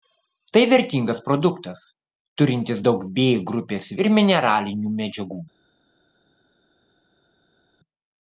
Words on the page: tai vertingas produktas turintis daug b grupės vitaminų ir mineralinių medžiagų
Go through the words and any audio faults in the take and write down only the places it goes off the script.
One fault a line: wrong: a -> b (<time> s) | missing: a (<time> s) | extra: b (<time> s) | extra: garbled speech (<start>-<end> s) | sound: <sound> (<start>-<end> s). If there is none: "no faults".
missing: vitaminų (3.9 s)